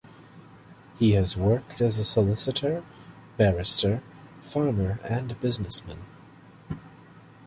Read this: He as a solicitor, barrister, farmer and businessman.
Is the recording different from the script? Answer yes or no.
yes